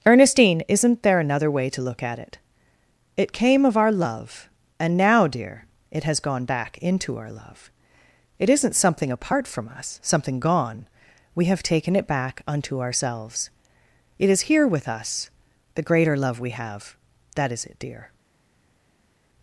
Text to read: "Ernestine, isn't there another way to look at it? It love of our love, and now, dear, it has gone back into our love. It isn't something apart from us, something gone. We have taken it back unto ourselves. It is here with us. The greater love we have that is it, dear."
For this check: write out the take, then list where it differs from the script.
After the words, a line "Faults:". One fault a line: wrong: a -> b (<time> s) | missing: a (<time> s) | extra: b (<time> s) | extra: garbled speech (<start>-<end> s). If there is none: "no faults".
"Ernestine, isn't there another way to look at it? It came of our love, and now, dear, it has gone back into our love. It isn't something apart from us, something gone. We have taken it back unto ourselves. It is here with us. The greater love we have that is it, dear."
Faults:
wrong: love -> came (3.3 s)